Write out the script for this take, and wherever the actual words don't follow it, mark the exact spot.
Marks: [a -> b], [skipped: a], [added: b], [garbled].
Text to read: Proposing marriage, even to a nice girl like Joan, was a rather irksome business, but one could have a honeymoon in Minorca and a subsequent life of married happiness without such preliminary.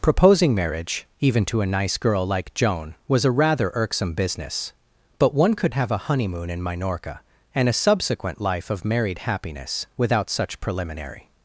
Proposing marriage, even to a nice girl like Joan, was a rather irksome business, but one could have a honeymoon in Minorca and a subsequent life of married happiness without such preliminary.